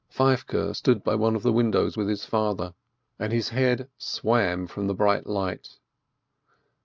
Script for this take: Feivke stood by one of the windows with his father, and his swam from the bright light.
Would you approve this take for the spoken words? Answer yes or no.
no